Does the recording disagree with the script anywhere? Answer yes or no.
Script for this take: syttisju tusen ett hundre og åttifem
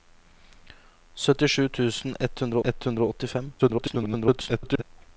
yes